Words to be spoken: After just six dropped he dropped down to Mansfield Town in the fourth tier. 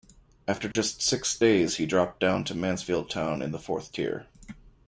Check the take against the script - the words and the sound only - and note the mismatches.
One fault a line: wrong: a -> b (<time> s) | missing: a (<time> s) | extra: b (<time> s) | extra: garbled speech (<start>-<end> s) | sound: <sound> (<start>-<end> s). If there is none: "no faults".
sound: dropout (0.7-0.8 s)
wrong: dropped -> days (1.4 s)